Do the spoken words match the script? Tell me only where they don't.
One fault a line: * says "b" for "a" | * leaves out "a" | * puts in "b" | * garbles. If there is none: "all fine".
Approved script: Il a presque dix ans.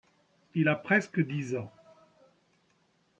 all fine